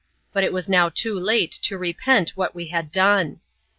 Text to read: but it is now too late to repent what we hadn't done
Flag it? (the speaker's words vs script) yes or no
yes